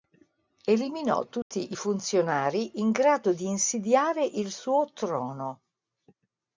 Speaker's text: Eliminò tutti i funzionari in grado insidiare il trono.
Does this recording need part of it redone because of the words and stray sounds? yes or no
yes